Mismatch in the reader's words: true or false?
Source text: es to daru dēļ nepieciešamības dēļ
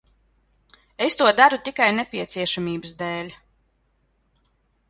true